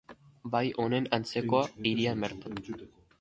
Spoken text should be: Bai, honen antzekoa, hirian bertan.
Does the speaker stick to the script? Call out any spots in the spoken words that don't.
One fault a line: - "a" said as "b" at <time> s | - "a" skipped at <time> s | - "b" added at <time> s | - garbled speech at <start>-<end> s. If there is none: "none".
none